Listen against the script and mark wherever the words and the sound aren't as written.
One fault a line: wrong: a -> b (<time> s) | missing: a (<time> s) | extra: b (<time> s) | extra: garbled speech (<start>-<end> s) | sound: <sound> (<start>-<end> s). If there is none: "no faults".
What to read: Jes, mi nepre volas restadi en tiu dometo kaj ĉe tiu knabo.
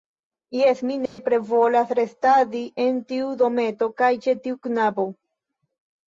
sound: dropout (1.1-1.2 s)